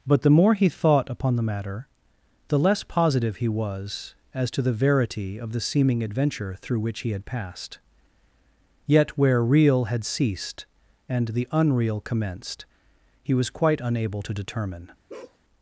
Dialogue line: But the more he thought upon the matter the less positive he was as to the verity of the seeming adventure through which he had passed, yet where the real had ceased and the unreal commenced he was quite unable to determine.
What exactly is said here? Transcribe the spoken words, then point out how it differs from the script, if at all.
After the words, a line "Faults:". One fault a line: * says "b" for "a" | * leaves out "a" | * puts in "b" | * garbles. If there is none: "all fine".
But the more he thought upon the matter the less positive he was as to the verity of the seeming adventure through which he had passed, yet where real had ceased and the unreal commenced he was quite unable to determine.
Faults:
* leaves out "the"